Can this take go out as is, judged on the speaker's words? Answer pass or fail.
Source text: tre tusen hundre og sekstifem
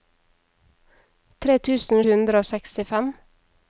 pass